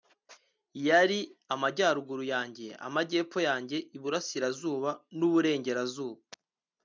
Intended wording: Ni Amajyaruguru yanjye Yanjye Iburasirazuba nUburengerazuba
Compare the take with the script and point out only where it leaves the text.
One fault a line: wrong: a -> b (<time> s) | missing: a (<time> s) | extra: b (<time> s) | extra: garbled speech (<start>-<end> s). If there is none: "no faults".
wrong: Ni -> Yari (0.9 s)
extra: Amajyepfo (2.9 s)